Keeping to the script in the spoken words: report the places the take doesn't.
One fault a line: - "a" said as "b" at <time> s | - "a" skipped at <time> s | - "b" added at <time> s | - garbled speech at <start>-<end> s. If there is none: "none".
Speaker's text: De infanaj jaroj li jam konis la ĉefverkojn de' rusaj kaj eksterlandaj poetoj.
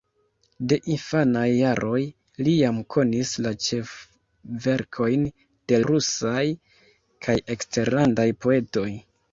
none